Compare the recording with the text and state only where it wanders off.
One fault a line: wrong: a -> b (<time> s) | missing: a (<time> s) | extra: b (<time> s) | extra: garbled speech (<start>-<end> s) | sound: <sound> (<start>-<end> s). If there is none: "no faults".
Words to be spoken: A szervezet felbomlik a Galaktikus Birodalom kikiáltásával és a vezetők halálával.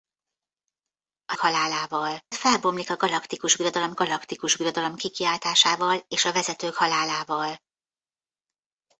wrong: szervezet -> halálával (1.4 s)
extra: Galaktikus Birodalom (3.9 s)